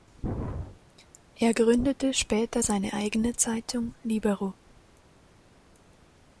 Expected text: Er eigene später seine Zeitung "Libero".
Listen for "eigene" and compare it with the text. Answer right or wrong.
wrong